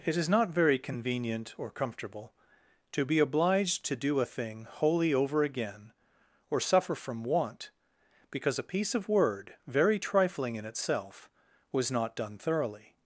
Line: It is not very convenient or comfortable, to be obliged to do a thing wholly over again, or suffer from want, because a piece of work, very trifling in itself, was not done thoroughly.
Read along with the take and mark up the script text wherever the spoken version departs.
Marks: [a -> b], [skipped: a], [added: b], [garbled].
It is not very convenient or comfortable, to be obliged to do a thing wholly over again, or suffer from want, because a piece of [work, -> word] very trifling in itself, was not done thoroughly.